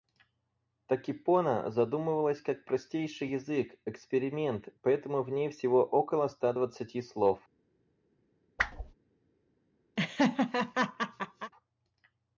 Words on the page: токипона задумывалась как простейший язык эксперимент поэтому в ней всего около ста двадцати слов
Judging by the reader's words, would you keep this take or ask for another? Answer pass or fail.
pass